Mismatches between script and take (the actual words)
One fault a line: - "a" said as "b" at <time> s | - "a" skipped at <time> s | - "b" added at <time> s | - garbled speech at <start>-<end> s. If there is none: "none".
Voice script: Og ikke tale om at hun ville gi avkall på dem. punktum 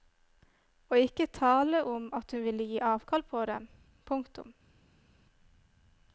none